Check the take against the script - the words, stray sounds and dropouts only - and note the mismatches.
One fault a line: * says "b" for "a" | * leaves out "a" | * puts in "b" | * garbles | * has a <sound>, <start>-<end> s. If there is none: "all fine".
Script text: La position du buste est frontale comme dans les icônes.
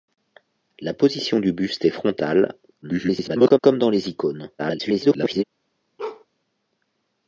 * garbles
* garbles
* has a bark, 6.0-6.3 s